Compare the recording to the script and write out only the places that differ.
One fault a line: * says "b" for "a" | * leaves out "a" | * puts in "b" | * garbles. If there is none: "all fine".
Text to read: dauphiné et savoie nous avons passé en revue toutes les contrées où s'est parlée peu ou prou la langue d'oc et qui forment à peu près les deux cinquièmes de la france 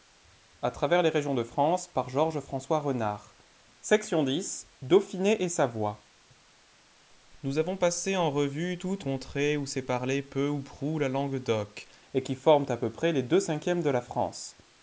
* leaves out "les"